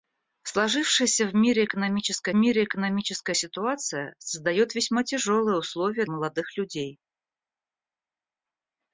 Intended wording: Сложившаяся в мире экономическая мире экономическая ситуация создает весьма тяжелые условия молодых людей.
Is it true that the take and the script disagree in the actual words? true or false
false